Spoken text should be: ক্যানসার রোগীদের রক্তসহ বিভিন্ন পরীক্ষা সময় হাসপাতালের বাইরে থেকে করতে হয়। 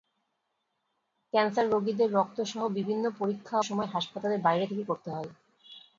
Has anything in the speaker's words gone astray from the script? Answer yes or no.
no